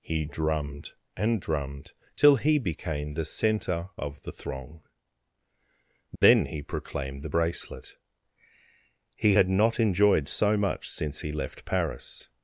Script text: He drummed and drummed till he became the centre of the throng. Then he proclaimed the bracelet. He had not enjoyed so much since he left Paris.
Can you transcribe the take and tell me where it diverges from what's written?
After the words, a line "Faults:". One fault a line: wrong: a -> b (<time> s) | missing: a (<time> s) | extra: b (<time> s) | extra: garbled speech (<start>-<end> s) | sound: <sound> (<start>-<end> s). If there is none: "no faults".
He drummed and drummed till he became the centre of the throng. Then he proclaimed the bracelet. He had not enjoyed so much since he left Paris.
Faults:
sound: dropout (6.2-6.2 s)